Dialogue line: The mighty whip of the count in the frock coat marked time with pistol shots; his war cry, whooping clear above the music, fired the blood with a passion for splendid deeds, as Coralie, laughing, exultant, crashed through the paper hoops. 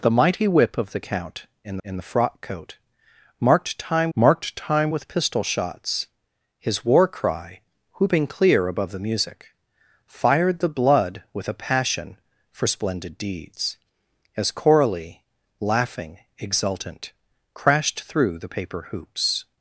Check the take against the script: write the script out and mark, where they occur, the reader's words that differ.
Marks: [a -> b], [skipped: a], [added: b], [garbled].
The mighty whip of the count in [added: in] the frock coat marked time [added: marked time] with pistol shots; his war cry, whooping clear above the music, fired the blood with a passion for splendid deeds, as Coralie, laughing, exultant, crashed through the paper hoops.